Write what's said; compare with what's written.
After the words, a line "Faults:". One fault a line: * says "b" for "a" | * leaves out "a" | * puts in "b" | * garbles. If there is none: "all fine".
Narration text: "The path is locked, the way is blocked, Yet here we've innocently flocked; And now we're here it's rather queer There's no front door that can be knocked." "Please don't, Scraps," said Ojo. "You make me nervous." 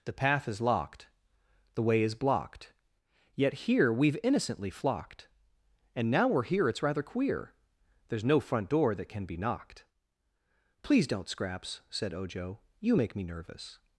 "The path is locked, the way is blocked, Yet here we've innocently flocked; And now we're here it's rather queer There's no front door that can be knocked." "Please don't, Scraps," said Ojo. "You make me nervous."
Faults:
all fine